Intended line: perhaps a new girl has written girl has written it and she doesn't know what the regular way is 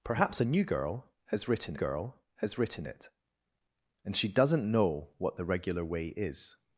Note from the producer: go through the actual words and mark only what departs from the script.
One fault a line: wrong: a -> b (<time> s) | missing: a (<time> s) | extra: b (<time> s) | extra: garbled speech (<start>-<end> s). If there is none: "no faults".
no faults